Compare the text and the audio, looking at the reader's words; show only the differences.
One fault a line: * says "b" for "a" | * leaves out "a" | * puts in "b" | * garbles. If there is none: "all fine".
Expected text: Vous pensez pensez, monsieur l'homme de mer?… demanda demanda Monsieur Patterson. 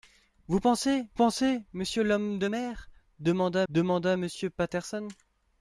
all fine